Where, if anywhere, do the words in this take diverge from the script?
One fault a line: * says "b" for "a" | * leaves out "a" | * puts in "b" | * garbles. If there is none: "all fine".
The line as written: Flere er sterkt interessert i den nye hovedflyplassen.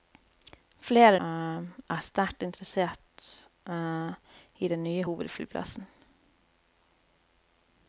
all fine